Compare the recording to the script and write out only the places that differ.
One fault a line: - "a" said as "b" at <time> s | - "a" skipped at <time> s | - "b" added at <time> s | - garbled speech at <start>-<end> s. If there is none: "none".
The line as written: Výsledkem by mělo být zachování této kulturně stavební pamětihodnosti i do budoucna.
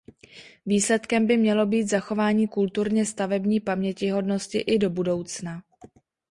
- "této" skipped at 2.5 s